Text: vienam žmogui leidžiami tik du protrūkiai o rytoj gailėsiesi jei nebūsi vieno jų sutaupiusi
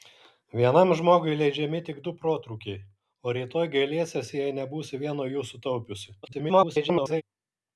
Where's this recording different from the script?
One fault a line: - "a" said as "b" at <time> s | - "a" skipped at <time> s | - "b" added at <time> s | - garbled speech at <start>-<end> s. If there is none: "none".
- garbled speech at 6.2-7.2 s